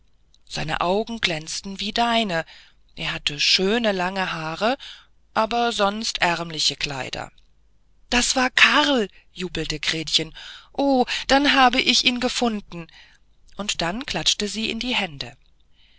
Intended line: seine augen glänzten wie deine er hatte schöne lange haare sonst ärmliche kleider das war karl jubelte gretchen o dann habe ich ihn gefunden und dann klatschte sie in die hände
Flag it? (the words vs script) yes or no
yes